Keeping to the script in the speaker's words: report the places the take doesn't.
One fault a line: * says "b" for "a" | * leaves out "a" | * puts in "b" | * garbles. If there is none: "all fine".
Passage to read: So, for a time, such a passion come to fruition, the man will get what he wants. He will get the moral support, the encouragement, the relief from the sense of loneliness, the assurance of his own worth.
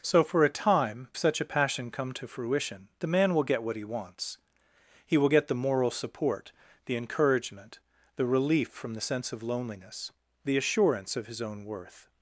all fine